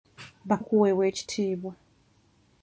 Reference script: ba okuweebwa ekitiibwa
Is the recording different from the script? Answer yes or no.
no